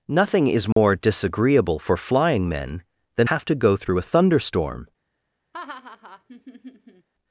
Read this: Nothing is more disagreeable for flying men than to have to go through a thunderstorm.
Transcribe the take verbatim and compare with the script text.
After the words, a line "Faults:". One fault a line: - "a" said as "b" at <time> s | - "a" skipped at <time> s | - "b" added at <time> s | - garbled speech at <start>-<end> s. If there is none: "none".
Nothing is more disagreeable for flying men than have to go through a thunderstorm.
Faults:
- "to" skipped at 3.3 s